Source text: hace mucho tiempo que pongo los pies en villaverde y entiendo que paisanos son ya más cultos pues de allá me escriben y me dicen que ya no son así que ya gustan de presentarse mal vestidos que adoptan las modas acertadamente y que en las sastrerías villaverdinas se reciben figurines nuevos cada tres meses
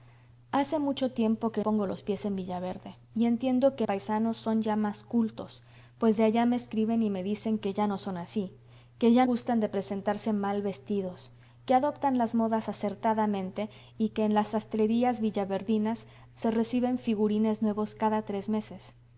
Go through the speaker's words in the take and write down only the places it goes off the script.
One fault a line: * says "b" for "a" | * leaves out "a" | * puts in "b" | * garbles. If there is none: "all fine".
all fine